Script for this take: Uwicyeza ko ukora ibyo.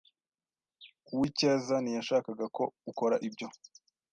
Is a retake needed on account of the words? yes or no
yes